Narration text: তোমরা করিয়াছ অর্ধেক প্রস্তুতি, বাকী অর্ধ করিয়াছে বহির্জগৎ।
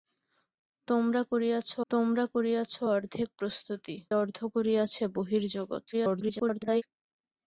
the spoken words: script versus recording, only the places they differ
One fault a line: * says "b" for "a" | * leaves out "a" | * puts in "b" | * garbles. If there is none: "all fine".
* puts in "তোমরা করিয়াছ"
* leaves out "বাকী"
* garbles